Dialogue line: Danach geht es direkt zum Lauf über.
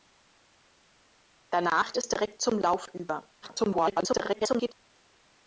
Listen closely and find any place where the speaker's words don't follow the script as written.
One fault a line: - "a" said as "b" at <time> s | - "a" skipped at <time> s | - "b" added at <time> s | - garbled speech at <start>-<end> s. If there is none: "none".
- "geht" skipped at 1.9 s
- garbled speech at 3.4-4.7 s